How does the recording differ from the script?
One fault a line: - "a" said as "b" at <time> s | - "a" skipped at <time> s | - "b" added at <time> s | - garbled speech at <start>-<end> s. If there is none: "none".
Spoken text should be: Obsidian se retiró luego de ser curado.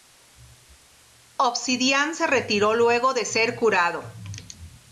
none